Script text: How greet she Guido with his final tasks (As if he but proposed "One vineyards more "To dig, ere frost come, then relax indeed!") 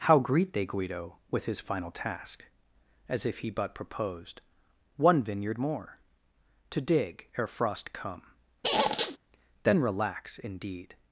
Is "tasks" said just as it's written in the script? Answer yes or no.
no